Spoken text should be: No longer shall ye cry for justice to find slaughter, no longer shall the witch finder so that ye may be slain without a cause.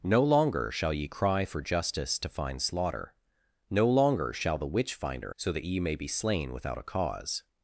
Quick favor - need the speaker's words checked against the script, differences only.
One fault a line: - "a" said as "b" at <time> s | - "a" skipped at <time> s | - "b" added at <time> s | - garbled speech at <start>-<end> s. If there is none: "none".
none